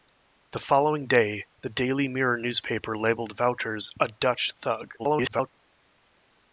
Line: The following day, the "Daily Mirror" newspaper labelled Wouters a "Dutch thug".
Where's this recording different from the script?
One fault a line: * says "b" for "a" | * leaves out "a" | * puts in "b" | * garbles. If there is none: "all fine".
* garbles